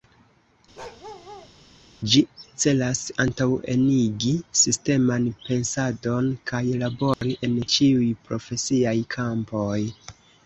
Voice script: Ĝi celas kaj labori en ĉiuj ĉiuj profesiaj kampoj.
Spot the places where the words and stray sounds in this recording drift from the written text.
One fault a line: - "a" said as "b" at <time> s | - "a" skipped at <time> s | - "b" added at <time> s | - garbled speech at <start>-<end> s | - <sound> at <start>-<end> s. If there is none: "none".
- bark at 0.8-1.5 s
- "antaŭenigi sisteman pensadon" added at 3.2 s
- dropout at 7.1-7.2 s
- "ĉiuj" skipped at 8.1 s